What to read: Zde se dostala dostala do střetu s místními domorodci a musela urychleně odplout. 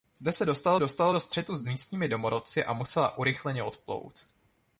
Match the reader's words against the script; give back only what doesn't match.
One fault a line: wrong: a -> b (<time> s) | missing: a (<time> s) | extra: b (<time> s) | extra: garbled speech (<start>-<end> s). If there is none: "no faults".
no faults